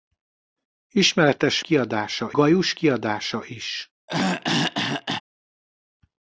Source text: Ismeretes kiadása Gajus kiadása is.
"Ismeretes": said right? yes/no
yes